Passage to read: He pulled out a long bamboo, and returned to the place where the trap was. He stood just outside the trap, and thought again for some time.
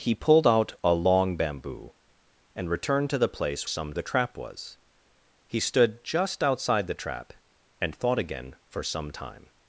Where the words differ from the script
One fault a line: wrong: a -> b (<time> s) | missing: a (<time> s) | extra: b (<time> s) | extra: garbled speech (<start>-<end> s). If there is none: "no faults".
wrong: where -> some (3.6 s)